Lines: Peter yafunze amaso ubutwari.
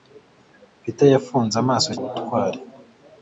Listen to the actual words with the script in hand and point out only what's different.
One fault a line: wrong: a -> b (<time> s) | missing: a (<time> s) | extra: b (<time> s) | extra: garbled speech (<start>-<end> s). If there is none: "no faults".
no faults